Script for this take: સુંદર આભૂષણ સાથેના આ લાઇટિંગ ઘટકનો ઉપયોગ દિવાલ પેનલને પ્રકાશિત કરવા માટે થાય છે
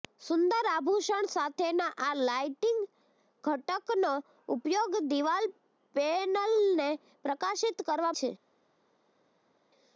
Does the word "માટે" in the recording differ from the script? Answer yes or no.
yes